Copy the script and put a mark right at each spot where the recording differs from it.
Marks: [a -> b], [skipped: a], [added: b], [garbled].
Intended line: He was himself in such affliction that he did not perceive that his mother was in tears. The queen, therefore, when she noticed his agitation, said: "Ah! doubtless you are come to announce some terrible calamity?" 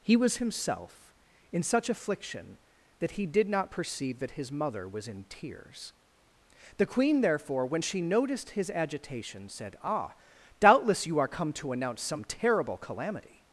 He was himself in such affliction that he did not perceive that his mother was in tears. The queen, therefore, when she noticed his agitation, said: "Ah! doubtless you are come to announce some terrible calamity?"